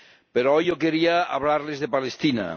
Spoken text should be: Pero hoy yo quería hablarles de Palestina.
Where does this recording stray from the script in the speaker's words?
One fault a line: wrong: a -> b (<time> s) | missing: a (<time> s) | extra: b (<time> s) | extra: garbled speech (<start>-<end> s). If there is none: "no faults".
no faults